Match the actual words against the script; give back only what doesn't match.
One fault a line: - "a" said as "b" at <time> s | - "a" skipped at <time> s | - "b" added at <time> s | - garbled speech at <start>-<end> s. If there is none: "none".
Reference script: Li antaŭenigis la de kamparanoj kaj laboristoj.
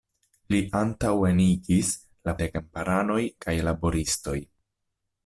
none